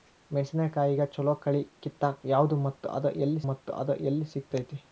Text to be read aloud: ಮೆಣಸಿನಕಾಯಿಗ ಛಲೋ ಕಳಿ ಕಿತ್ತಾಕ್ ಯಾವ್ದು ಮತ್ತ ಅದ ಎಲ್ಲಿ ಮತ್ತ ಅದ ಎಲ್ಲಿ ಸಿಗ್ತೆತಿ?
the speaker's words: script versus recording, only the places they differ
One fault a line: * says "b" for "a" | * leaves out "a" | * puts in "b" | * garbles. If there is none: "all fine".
all fine